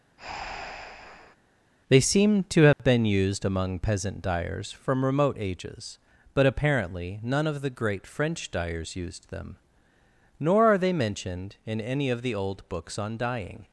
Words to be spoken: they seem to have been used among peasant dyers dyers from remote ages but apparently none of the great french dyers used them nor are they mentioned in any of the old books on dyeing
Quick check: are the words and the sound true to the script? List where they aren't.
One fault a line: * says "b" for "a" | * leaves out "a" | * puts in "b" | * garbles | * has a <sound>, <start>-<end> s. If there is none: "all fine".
* has a breath, 0.2-1.4 s
* has a dropout, 2.7-2.8 s
* leaves out "dyers"